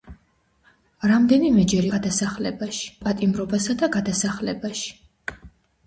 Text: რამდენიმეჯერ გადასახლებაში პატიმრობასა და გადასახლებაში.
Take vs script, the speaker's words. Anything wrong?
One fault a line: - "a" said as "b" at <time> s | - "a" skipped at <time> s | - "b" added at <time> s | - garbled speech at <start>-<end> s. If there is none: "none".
none